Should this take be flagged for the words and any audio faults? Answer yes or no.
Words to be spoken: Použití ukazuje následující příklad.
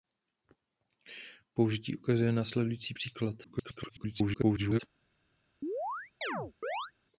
yes